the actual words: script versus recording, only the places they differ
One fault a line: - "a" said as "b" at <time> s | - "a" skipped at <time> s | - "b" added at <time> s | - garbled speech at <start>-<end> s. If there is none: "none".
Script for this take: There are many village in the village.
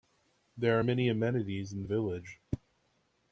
- "village" said as "amenities" at 1.1 s